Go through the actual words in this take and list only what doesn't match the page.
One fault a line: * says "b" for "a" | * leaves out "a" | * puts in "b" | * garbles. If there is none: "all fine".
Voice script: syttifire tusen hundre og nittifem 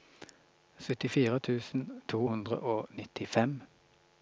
* puts in "to"